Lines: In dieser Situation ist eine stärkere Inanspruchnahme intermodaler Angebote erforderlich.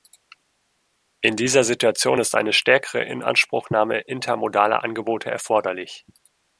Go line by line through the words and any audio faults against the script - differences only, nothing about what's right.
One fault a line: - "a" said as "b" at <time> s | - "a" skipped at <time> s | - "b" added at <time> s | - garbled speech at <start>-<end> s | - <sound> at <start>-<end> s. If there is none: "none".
none